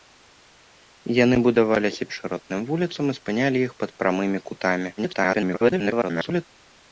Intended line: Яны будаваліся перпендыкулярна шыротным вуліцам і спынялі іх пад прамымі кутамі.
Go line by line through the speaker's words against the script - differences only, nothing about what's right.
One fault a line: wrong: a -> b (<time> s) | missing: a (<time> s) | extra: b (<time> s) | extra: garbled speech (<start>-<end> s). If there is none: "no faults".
missing: перпендыкулярна (2.0 s)
extra: garbled speech (5.0-6.4 s)